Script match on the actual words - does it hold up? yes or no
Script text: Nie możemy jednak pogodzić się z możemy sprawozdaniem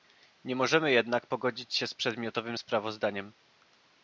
no